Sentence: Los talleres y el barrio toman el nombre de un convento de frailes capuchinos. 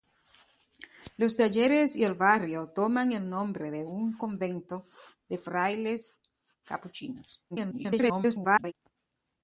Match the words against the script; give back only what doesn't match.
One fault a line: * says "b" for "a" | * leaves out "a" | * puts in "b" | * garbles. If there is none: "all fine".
* garbles